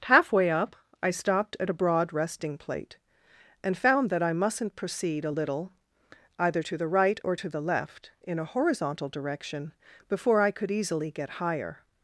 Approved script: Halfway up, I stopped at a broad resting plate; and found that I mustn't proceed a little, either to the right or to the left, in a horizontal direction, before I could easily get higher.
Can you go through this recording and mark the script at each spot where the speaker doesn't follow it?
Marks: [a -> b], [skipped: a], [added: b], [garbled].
Halfway up, I stopped at a broad resting plate; and found that I mustn't proceed a little, either to the right or to the left, in a horizontal direction, before I could easily get higher.